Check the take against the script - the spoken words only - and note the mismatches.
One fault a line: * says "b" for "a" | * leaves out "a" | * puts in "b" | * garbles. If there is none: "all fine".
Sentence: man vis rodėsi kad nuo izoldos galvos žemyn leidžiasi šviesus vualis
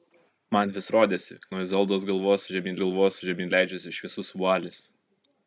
* leaves out "kad"
* puts in "galvos žemyn"